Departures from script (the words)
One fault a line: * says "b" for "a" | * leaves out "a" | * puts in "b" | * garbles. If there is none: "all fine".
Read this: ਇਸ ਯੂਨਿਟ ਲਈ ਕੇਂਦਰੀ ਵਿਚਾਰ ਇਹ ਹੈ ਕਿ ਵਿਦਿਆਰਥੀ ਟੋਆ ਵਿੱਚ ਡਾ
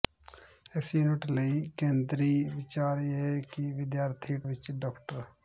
* leaves out "ਟੋਆ"